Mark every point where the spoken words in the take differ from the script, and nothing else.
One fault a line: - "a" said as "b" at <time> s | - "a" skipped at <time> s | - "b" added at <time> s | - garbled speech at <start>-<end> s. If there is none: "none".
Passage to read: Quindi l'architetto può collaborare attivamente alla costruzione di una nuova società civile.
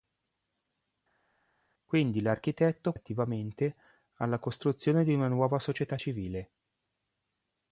- "può collaborare" skipped at 2.9 s